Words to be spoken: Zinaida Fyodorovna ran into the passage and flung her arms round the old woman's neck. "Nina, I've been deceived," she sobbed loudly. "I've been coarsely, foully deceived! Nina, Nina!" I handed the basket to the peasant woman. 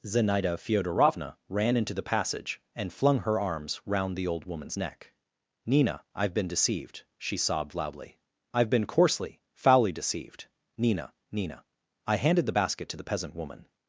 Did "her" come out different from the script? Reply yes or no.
no